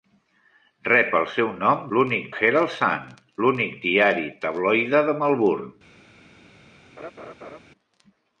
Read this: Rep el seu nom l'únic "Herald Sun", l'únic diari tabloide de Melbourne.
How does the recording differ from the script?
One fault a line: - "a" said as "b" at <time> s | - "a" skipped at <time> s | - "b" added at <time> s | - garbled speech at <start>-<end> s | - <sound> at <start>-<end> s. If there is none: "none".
- laugh at 7.0-7.6 s